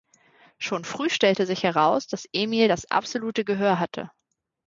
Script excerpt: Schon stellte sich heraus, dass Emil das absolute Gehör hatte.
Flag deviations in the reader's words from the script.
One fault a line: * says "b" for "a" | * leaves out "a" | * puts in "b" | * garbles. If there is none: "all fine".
* puts in "früh"